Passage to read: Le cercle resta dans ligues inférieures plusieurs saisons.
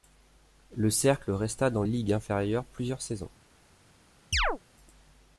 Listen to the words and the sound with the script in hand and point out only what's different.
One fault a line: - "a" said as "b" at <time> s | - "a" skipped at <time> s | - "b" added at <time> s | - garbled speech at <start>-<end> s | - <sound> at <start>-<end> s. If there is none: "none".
- chirp at 4.3-4.6 s